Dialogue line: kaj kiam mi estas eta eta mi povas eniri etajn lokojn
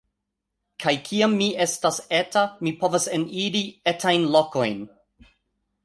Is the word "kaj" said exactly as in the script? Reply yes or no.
yes